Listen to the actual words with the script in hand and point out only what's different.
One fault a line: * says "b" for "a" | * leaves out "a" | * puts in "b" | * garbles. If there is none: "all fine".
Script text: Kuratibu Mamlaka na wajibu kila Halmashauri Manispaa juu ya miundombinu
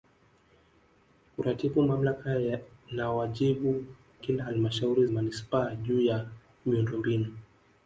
all fine